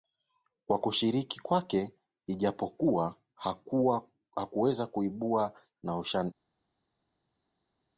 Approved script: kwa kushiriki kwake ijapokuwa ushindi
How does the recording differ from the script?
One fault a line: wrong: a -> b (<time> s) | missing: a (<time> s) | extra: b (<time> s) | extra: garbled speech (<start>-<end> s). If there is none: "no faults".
extra: hakuweza kuibuka na (4.3 s)